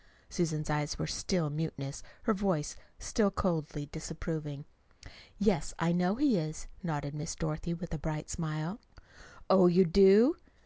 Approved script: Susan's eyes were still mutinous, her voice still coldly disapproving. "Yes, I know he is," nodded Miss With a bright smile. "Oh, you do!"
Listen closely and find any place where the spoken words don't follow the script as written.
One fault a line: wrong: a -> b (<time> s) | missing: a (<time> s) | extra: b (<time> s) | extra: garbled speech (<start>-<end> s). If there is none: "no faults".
extra: Dorothy (7.4 s)